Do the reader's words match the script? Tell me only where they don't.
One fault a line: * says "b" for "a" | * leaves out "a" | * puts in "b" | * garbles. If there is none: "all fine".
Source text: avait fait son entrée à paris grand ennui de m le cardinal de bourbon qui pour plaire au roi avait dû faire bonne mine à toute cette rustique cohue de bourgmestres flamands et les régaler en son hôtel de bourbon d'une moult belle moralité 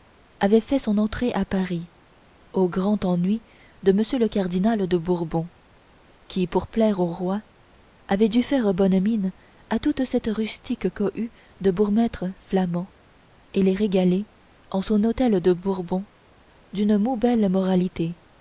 * puts in "au"